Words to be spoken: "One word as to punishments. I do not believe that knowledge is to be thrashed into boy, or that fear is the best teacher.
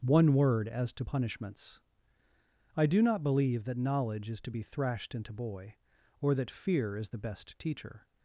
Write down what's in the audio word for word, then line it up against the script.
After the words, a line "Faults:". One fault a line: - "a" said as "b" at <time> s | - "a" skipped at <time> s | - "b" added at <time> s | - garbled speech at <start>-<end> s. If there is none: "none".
"One word as to punishments. I do not believe that knowledge is to be thrashed into boy, or that fear is the best teacher.
Faults:
none